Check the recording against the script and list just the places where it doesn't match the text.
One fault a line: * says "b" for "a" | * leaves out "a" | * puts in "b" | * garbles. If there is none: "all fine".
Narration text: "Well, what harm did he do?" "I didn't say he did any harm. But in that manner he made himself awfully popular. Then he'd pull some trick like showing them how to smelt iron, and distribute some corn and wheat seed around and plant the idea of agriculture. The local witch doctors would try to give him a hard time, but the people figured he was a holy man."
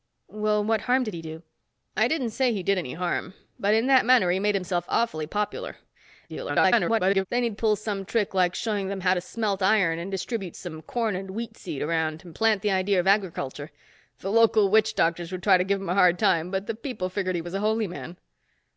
* garbles